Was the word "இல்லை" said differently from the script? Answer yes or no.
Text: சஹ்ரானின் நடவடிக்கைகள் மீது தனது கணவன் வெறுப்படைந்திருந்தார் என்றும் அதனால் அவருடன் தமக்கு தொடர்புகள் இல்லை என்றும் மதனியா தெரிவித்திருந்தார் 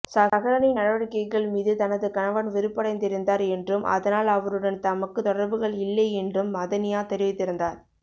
no